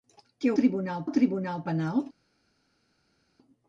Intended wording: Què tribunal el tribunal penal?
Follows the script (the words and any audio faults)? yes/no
yes